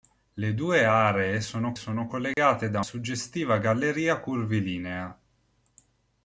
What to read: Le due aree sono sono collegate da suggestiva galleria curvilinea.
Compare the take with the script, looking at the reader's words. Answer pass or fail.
pass